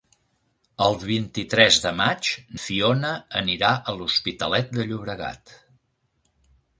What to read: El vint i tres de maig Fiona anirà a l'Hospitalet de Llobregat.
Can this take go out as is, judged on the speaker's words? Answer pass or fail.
pass